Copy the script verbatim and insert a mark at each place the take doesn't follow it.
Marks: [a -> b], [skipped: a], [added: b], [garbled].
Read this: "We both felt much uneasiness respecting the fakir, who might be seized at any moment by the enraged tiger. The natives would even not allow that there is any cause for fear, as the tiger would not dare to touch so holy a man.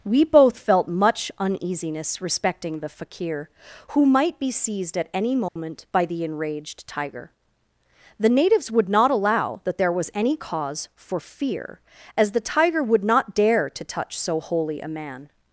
"We both felt much uneasiness respecting the fakir, who might be seized at any moment by the enraged tiger. The natives would [skipped: even] not allow that there [is -> was] any cause for fear, as the tiger would not dare to touch so holy a man.